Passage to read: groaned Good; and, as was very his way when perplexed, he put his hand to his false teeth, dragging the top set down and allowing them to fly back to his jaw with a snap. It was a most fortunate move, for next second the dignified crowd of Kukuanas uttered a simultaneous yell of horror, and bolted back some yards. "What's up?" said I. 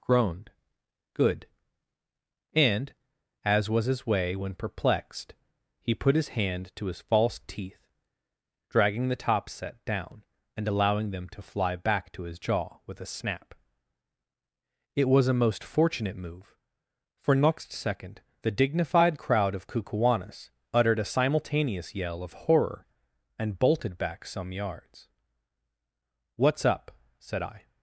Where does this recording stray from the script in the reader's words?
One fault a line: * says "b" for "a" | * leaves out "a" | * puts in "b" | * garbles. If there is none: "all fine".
* leaves out "very"